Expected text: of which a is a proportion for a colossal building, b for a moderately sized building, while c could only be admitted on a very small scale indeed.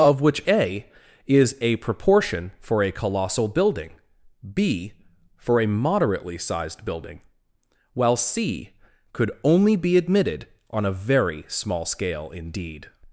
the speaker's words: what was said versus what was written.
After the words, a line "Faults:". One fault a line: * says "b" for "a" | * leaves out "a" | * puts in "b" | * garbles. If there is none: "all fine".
of which a is a proportion for a colossal building, b for a moderately sized building, while c could only be admitted on a very small scale indeed.
Faults:
all fine